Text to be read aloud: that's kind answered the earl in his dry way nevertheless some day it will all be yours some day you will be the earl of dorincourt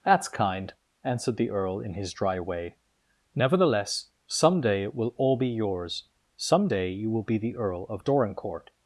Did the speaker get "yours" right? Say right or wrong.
right